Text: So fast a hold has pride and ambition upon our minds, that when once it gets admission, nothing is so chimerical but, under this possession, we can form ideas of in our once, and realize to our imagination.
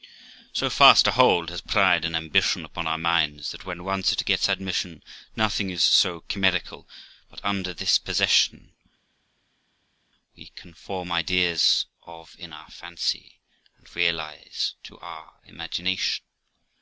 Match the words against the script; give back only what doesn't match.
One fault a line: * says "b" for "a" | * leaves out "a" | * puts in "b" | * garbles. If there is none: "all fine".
* says "fancy" for "once"